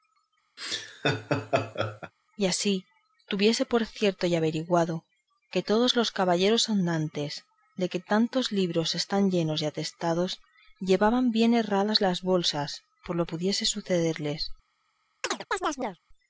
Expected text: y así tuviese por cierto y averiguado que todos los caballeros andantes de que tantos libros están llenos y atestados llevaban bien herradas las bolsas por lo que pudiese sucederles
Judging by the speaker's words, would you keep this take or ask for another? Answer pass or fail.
fail